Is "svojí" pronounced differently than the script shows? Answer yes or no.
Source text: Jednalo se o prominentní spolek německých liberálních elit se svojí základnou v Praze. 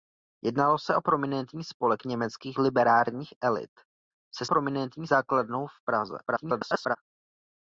yes